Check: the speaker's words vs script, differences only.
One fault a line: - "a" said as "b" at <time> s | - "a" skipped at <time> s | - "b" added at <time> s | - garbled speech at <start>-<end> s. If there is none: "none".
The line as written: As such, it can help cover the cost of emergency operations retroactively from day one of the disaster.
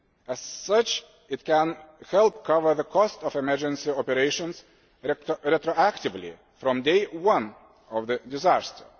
none